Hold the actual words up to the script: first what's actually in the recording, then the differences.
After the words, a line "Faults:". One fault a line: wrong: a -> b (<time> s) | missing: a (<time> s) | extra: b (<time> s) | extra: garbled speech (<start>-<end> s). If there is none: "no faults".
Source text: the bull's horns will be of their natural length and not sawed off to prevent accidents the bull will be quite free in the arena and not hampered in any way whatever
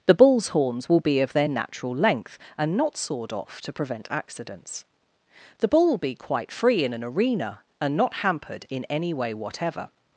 the bull's horns will be of their natural length and not sawed off to prevent accidents the bull will be quite free in an arena and not hampered in any way whatever
Faults:
wrong: the -> an (6.9 s)